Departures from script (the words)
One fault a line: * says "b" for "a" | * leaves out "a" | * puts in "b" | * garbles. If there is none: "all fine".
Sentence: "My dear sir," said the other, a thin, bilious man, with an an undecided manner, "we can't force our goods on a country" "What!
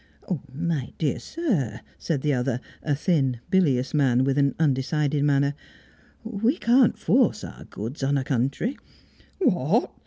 * leaves out "an"